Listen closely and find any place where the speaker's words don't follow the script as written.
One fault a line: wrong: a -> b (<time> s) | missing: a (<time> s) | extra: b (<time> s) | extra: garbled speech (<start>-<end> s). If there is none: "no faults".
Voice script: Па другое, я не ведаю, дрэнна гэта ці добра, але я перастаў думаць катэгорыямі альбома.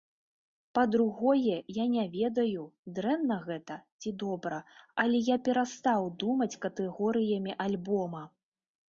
no faults